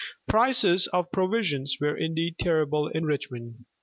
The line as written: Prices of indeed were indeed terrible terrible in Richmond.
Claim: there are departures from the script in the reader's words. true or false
true